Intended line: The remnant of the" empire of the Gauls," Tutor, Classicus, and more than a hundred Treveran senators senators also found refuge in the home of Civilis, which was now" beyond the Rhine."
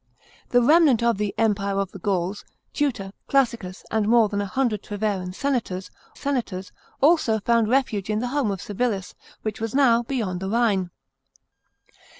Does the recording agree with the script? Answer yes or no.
yes